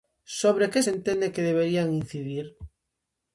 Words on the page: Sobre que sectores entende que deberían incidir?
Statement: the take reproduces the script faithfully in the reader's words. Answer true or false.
false